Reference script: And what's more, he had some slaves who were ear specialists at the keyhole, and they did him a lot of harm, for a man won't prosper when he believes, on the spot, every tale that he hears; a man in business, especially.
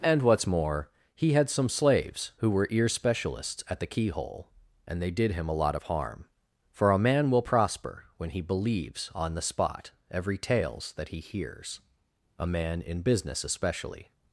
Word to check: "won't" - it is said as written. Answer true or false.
false